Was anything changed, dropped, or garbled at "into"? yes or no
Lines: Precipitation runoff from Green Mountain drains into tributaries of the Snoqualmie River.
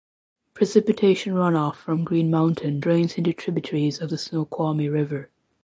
no